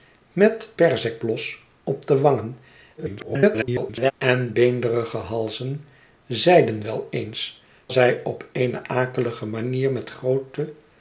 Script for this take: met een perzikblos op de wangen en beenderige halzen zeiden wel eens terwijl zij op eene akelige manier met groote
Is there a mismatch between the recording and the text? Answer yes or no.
yes